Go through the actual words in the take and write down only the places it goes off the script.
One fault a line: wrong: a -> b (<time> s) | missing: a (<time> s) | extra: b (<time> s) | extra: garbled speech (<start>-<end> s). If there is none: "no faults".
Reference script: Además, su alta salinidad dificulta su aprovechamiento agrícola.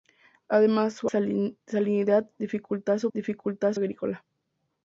missing: alta (1.1 s)
wrong: aprovechamiento -> dificulta (3.1 s)